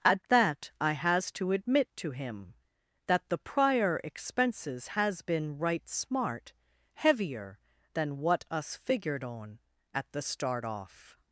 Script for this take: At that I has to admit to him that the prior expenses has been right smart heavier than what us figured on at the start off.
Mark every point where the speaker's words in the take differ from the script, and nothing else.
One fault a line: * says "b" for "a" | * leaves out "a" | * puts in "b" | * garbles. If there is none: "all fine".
all fine